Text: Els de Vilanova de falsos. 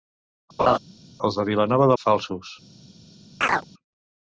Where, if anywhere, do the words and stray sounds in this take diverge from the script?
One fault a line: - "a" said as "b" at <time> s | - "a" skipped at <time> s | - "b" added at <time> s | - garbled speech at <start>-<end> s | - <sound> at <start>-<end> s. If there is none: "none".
- laugh at 0.6-0.8 s
- chirp at 3.4-3.6 s